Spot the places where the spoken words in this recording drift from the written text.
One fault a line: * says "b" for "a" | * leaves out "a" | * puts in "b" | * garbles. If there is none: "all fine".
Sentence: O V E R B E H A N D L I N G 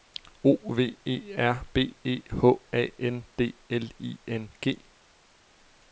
all fine